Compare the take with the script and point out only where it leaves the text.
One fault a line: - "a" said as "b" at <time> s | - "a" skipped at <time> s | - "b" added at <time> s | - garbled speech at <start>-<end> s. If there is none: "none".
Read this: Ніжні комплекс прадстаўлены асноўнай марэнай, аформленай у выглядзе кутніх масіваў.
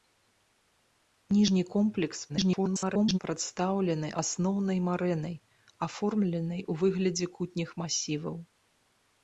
- garbled speech at 2.3-3.2 s